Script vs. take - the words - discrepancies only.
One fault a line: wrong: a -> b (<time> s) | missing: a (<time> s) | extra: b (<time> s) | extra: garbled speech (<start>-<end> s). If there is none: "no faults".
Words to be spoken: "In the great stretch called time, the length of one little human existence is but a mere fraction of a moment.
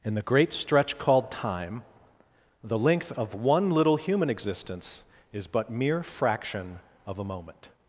missing: a (5.7 s)